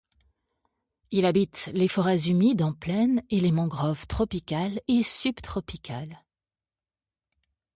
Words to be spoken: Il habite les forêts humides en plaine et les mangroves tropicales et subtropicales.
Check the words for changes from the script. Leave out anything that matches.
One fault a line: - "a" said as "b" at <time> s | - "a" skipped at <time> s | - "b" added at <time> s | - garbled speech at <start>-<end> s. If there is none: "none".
none